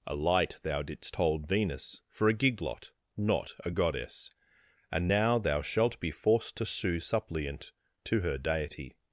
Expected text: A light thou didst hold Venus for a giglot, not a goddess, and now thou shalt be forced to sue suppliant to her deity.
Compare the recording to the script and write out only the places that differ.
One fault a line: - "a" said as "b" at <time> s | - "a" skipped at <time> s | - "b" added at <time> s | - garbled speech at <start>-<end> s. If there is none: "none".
none